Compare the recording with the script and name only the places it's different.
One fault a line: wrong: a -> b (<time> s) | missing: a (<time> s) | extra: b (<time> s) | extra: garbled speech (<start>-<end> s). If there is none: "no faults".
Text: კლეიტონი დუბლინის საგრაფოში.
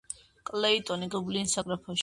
no faults